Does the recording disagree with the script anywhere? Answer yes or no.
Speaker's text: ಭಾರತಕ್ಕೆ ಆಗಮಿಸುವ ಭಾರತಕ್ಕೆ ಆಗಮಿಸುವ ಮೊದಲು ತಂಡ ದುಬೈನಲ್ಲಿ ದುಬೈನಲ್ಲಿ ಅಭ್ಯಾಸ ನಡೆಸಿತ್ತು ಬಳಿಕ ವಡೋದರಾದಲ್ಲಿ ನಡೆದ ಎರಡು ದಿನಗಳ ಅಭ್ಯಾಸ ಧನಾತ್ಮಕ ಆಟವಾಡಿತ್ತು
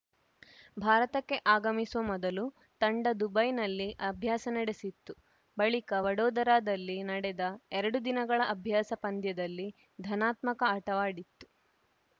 yes